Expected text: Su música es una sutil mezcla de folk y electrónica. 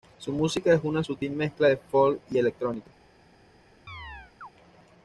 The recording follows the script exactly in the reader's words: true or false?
true